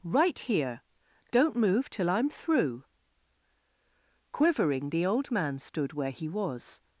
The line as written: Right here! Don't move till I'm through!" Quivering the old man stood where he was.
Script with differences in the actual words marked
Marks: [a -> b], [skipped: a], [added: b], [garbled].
Right here! Don't move till I'm through!" Quivering the old man stood where he was.